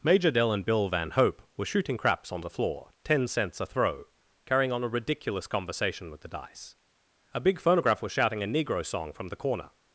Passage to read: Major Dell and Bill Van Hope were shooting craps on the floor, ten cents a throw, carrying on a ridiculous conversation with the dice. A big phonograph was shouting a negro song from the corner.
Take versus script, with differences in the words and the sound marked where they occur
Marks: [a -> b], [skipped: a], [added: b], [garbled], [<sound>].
Major Dell and Bill Van Hope were shooting craps on the floor, ten cents a throw, carrying on a ridiculous conversation with the dice. A big phonograph was shouting a negro song from the corner.